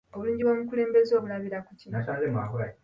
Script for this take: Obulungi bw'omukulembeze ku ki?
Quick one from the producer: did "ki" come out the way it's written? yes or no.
yes